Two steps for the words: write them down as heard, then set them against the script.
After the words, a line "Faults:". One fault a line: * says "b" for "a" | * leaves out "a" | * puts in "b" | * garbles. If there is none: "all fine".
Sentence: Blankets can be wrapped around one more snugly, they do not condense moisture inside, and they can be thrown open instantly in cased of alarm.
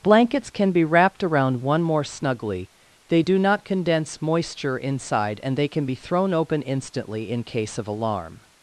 Blankets can be wrapped around one more snugly, they do not condense moisture inside, and they can be thrown open instantly in case of alarm.
Faults:
* says "case" for "cased"